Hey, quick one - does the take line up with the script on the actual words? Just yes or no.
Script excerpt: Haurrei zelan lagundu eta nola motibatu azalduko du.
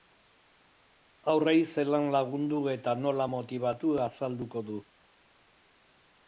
yes